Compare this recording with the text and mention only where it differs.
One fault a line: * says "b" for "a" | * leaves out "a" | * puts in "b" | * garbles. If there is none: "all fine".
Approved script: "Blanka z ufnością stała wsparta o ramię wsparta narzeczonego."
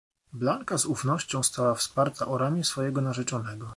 * says "swojego" for "wsparta"